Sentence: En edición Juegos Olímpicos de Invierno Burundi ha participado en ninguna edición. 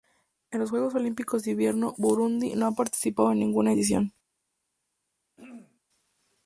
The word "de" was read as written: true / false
true